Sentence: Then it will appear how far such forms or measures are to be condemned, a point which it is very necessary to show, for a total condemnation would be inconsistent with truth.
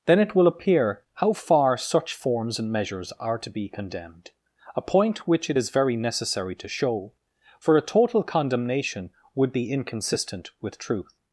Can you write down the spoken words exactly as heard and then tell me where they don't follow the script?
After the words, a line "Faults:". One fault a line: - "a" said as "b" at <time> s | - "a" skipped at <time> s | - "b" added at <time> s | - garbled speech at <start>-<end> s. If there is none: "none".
Then it will appear how far such forms and measures are to be condemned, a point which it is very necessary to show, for a total condemnation would be inconsistent with truth.
Faults:
- "or" said as "and" at 2.6 s